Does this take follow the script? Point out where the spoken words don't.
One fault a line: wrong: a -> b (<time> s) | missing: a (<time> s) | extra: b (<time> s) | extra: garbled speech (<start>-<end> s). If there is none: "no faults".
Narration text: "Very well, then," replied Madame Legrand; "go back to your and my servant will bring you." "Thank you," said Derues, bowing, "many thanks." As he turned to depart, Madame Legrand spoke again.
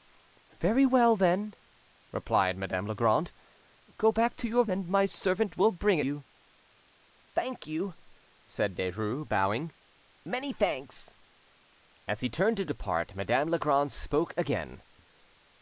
no faults